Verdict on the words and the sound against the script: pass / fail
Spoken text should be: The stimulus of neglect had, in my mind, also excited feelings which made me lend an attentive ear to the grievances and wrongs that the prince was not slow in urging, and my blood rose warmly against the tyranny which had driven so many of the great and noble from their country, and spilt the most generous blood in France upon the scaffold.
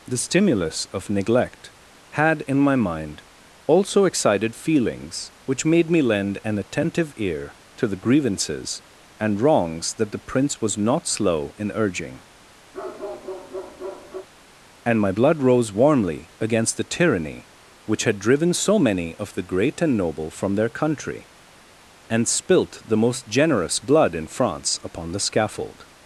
fail